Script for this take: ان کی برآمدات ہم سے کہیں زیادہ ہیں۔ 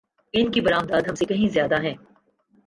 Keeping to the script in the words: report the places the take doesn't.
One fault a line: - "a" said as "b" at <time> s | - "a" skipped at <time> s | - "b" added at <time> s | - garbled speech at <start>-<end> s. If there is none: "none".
none